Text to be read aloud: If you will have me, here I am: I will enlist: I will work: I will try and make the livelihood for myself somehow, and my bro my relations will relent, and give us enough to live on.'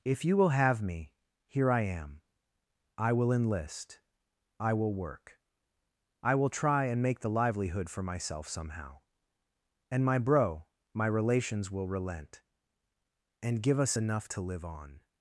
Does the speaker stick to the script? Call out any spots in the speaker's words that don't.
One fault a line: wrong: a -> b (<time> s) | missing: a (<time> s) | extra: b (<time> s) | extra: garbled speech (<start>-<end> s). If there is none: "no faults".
no faults